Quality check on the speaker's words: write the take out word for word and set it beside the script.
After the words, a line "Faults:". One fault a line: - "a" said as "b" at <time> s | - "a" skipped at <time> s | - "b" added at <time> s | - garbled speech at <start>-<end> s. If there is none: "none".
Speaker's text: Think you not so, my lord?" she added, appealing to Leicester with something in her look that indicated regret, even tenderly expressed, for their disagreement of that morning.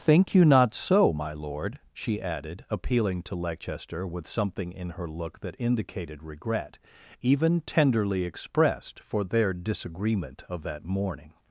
Think you not so, my lord?" she added, appealing to Leicester with something in her look that indicated regret, even tenderly expressed, for their disagreement of that morning.
Faults:
none